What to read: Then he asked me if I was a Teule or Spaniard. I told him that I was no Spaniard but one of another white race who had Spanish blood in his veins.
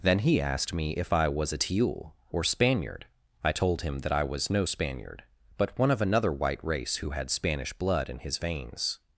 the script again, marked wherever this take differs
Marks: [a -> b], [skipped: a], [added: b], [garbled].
Then he asked me if I was a Teule or Spaniard. I told him that I was no Spaniard but one of another white race who had Spanish blood in his veins.